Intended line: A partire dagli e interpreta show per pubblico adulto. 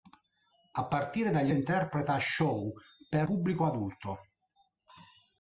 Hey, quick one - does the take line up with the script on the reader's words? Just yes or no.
yes